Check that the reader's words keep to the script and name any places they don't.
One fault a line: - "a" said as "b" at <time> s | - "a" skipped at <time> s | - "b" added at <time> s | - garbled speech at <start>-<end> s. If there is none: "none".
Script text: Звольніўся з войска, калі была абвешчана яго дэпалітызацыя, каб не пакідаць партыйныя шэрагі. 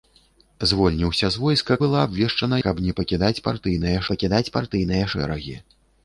- "калі" skipped at 1.8 s
- "яго дэпалітызацыя каб не" said as "каб не пакідаць партыйныя" at 2.7 s